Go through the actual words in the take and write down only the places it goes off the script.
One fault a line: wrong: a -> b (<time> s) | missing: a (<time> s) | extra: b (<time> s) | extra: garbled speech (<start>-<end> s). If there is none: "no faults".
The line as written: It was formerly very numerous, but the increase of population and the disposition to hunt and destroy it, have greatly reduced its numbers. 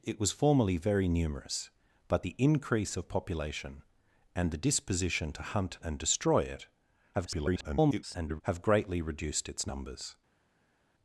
extra: garbled speech (7.1-8.4 s)